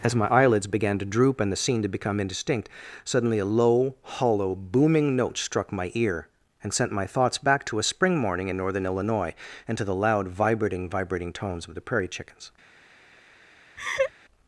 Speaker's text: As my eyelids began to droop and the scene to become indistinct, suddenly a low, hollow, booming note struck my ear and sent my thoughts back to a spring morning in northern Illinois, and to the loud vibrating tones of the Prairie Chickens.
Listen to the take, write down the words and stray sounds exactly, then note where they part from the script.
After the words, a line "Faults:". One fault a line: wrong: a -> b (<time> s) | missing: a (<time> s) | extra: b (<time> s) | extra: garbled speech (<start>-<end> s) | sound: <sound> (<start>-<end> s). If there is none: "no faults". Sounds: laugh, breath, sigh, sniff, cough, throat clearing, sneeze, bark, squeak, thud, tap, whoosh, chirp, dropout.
As my eyelids began to droop and the scene to become indistinct, suddenly a low, hollow, booming note struck my ear and sent my thoughts back to a spring morning in northern Illinois, and to the loud vibrating vibrating tones of the Prairie Chickens.
Faults:
extra: vibrating (10.9 s)
sound: laugh (13.8-14.1 s)